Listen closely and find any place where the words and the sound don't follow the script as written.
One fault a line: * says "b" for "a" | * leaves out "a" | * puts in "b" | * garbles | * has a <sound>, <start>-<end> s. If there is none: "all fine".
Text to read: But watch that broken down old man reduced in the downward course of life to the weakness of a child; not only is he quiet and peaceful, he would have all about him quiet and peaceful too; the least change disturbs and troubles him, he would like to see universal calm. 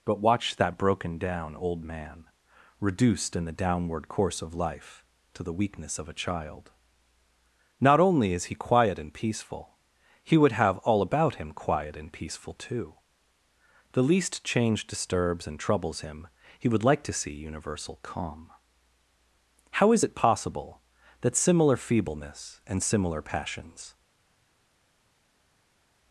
* puts in "How is it possible that similar feebleness and similar passions"